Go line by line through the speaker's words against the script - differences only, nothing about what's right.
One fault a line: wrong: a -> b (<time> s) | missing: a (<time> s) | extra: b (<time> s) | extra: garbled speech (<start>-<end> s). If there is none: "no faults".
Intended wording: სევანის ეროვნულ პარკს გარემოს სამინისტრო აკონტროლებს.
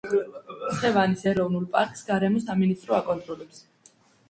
no faults